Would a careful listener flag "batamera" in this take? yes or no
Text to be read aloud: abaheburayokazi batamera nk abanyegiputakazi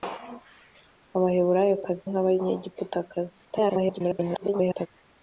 yes